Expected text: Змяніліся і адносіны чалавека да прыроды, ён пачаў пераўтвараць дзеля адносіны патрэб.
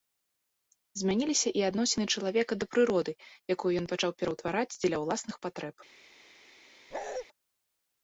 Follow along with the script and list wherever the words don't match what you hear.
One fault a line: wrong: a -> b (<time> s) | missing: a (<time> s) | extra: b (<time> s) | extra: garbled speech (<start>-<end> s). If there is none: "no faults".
extra: якую (3.6 s)
wrong: адносіны -> ўласных (5.1 s)